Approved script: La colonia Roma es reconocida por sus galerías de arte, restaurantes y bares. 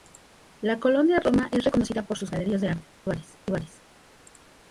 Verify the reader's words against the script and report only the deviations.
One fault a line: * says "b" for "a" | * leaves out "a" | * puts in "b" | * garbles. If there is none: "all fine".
* says "bares" for "restaurantes"